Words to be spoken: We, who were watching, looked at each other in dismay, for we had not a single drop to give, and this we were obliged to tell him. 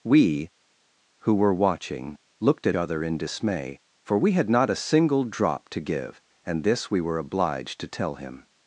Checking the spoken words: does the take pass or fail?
fail